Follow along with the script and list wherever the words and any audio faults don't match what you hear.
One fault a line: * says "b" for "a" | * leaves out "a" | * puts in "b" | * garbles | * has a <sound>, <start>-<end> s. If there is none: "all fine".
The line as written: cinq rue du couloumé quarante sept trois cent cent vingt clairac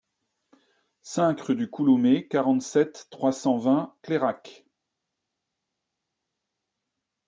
* leaves out "cent"